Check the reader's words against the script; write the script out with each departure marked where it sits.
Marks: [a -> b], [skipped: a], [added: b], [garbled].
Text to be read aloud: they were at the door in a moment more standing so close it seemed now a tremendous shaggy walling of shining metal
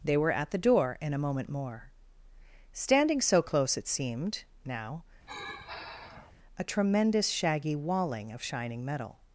they were at the door in a moment more standing so close it seemed now a tremendous shaggy walling of shining metal